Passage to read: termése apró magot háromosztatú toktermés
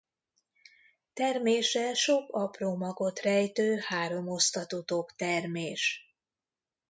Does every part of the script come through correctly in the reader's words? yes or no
no